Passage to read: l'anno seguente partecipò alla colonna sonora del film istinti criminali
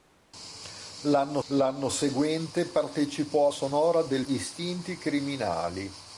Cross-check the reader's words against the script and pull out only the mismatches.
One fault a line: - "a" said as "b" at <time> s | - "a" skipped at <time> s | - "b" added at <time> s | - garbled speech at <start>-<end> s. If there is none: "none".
- "l'anno" added at 1.5 s
- "alla colonna" skipped at 3.5 s
- "film" skipped at 4.3 s